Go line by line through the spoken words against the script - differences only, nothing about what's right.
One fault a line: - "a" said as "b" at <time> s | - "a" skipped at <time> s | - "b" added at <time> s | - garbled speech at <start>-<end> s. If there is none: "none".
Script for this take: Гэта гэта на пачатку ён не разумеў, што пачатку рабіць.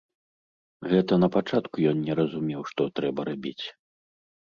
- "гэта" skipped at 1.1 s
- "пачатку" said as "трэба" at 3.0 s